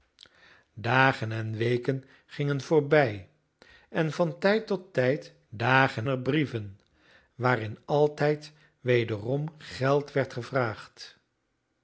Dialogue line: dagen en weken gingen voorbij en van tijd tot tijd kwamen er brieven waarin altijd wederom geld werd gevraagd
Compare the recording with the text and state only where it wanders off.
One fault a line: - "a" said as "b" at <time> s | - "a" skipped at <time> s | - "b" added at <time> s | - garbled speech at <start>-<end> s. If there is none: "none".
- "kwamen" said as "dagen" at 5.5 s